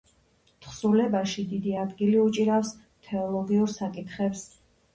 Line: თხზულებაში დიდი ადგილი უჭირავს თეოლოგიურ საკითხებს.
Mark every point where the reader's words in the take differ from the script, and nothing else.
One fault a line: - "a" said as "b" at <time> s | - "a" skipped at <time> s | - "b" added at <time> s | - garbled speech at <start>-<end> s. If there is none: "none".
none